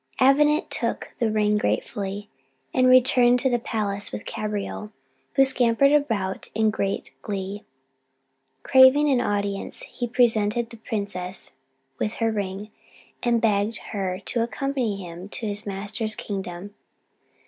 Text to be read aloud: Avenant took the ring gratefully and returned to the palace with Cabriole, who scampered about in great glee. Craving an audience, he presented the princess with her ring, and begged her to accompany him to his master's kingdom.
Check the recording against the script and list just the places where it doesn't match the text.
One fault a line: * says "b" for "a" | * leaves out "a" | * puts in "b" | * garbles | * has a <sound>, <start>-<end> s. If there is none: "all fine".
all fine